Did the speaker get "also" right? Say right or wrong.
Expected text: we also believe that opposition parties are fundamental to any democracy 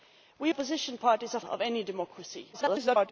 wrong